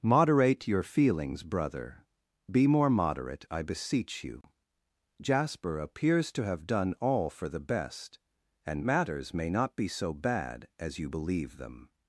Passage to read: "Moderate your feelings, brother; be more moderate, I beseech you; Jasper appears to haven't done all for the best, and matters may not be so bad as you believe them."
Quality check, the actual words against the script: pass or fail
fail